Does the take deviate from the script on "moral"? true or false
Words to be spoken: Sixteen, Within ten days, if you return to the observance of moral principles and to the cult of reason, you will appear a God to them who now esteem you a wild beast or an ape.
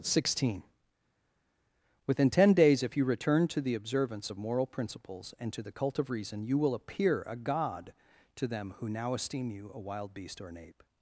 false